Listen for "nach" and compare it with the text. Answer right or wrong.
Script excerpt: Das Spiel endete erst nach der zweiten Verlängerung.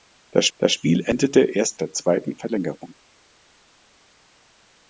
wrong